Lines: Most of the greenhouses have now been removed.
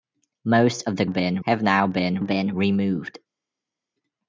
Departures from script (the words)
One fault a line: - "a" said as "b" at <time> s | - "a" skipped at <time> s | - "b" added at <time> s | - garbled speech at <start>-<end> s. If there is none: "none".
- "greenhouses" said as "been" at 1.1 s
- "been" added at 2.2 s